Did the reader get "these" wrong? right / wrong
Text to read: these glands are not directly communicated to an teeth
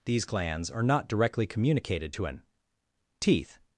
right